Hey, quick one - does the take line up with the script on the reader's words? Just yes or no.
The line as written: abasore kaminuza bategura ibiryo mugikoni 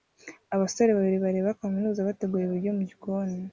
no